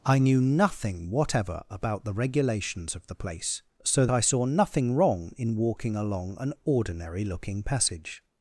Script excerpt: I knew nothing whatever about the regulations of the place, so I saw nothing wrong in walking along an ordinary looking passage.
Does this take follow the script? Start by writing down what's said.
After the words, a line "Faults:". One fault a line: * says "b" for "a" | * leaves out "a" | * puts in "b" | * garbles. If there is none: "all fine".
I knew nothing whatever about the regulations of the place, so I saw nothing wrong in walking along an ordinary looking passage.
Faults:
all fine